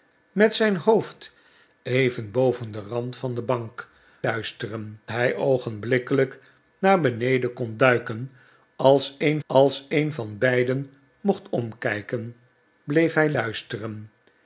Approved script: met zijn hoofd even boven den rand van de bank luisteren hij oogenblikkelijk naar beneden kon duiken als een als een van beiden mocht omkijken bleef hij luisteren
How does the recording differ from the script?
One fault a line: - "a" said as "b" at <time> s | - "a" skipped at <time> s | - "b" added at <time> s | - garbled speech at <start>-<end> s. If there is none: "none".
none